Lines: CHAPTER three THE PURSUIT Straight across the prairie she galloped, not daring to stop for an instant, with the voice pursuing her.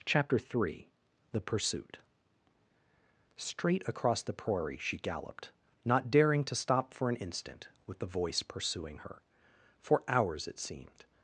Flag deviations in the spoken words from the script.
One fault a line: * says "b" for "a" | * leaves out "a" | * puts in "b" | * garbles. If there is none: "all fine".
* puts in "For hours it seemed"